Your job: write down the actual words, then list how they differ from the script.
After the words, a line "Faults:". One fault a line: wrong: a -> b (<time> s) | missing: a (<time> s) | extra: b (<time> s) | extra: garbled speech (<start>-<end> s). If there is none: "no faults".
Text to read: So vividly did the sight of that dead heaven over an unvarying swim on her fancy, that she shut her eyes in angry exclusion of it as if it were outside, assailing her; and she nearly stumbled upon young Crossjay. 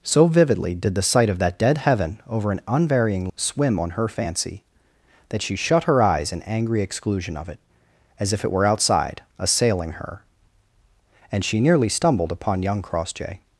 So vividly did the sight of that dead heaven over an unvarying swim on her fancy, that she shut her eyes in angry exclusion of it as if it were outside, assailing her; and she nearly stumbled upon young Crossjay.
Faults:
no faults